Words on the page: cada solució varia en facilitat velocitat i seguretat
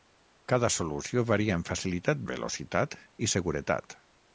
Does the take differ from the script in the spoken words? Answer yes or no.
no